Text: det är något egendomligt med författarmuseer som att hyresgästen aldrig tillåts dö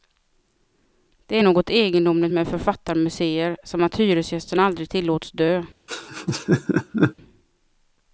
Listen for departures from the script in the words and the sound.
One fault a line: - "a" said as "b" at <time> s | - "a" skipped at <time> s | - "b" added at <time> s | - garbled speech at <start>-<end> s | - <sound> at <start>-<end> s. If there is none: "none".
- laugh at 5.9-7.1 s